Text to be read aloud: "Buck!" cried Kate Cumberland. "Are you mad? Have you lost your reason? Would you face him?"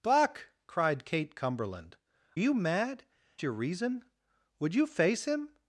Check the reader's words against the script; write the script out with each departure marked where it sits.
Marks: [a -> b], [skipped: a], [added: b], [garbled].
"Buck!" cried Kate Cumberland. [skipped: "Are] you mad? [skipped: Have you lost] your reason? Would you face him?"